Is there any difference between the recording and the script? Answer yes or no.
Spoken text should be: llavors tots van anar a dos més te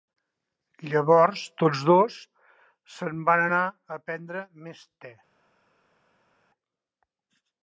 yes